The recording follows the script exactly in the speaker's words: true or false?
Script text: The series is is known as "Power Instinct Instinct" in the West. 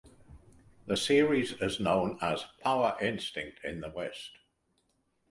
false